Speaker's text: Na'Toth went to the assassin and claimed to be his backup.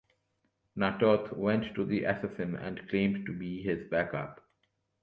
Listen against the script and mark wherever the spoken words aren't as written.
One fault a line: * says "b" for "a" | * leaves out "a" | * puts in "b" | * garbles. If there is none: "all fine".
all fine